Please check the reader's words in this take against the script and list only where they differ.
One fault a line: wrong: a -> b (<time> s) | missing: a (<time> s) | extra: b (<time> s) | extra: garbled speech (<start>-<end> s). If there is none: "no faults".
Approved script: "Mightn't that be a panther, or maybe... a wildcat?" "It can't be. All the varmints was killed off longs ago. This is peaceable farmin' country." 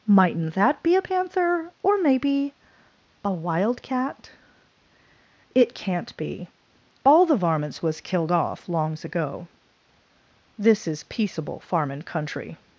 no faults